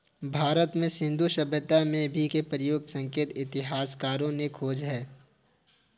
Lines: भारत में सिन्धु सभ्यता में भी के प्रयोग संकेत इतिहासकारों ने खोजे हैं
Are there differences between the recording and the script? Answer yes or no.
no